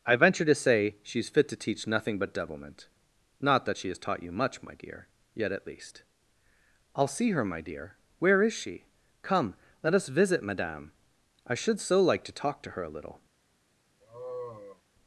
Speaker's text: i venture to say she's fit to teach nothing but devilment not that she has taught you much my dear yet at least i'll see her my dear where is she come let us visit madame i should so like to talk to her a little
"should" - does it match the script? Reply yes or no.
yes